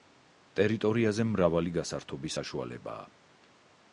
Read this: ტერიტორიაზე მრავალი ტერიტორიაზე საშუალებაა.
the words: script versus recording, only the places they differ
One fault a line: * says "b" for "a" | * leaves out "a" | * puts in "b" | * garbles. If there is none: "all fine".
* says "გასართობი" for "ტერიტორიაზე"